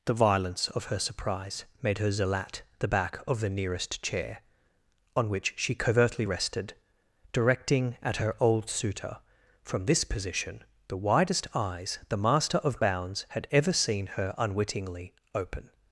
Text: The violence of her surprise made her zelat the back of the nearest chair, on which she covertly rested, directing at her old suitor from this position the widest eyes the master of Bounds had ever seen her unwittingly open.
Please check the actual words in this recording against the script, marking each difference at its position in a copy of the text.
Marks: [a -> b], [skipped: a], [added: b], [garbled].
The violence of her surprise made her zelat the back of the nearest chair, on which she covertly rested, directing at her old suitor from this position the widest eyes the master of Bounds had ever seen her unwittingly open.